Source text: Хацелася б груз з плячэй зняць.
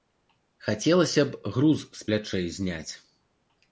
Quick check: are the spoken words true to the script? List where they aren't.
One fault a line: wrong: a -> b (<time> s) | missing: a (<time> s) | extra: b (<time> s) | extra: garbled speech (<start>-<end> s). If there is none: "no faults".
no faults